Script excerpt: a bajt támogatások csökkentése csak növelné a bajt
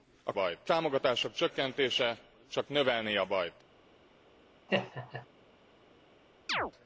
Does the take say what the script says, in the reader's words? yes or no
yes